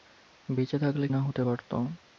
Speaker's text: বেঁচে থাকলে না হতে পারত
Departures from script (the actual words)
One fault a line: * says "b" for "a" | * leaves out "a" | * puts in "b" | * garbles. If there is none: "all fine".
all fine